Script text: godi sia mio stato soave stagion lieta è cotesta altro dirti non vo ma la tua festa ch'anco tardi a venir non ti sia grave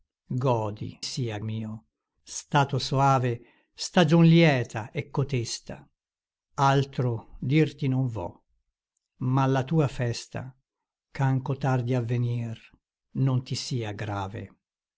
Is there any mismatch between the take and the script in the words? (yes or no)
no